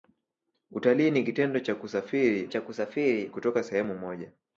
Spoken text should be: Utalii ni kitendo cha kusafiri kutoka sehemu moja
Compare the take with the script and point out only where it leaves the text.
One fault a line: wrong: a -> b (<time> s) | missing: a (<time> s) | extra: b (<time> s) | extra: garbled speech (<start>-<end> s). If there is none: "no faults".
extra: cha kusafiri (2.5 s)